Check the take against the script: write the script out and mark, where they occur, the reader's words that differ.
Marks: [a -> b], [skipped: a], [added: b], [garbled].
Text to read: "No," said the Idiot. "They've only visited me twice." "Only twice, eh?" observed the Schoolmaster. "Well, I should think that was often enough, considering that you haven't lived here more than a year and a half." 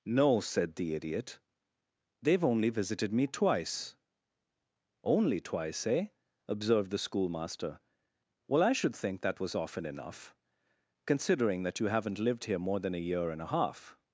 "No," said the Idiot. "They've only visited me twice." "Only twice, eh?" observed the Schoolmaster. "Well, I should think that was often enough, considering that you haven't lived here more than a year and a half."